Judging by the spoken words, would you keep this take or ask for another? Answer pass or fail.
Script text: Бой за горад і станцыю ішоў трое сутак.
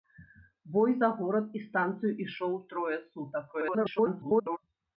fail